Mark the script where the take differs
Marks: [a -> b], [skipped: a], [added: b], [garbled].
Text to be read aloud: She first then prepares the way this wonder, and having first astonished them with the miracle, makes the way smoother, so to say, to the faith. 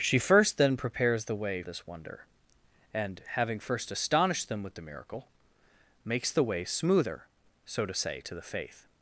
She first then prepares the way this wonder, and having first astonished them with the miracle, makes the way smoother, so to say, to the faith.